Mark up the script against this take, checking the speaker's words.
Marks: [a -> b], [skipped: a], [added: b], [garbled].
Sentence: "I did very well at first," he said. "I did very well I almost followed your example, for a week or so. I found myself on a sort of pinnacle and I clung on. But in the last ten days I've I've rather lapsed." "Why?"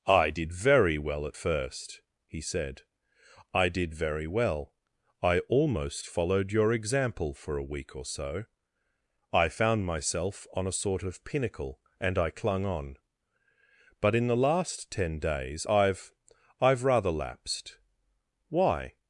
"I did very well at first," he said. "I did very well I almost followed your example, for a week or so. I found myself on a sort of pinnacle and I clung on. But in the last ten days I've I've rather lapsed." "Why?"